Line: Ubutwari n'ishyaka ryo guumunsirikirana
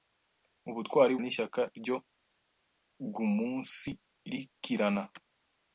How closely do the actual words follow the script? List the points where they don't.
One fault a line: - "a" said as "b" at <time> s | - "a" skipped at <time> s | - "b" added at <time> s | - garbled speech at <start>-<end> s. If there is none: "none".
none